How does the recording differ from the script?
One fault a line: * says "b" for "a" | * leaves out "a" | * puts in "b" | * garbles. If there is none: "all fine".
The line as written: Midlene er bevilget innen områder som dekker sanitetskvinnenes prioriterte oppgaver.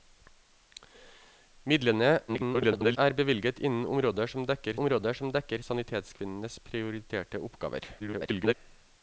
* garbles
* puts in "områder som dekker"
* garbles